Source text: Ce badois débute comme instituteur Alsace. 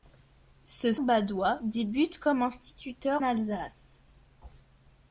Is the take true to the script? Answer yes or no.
yes